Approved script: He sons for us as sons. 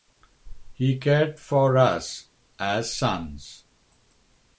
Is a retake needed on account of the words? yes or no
yes